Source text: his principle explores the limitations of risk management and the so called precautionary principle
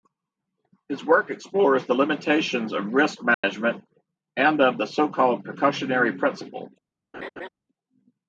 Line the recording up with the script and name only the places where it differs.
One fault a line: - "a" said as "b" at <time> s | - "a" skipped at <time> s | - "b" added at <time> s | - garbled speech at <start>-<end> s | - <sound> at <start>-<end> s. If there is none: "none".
- "principle" said as "work" at 1.1 s
- dropout at 3.3-3.4 s
- "of" added at 4.6 s
- laugh at 7.1-7.5 s